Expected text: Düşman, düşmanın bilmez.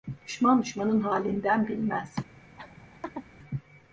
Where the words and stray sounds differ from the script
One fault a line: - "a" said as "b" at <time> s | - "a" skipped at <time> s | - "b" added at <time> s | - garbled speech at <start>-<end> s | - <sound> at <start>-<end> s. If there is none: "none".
- "halinden" added at 1.0 s
- laugh at 2.6-3.3 s